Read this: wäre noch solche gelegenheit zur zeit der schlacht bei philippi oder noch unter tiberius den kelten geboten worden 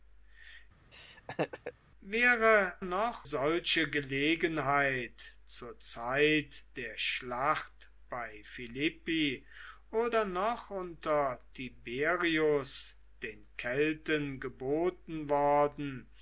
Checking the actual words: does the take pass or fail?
pass